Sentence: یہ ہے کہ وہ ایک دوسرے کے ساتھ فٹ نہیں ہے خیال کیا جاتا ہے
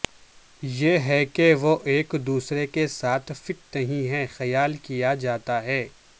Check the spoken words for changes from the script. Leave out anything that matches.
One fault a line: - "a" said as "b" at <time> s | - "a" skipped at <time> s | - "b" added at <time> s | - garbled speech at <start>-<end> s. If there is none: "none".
none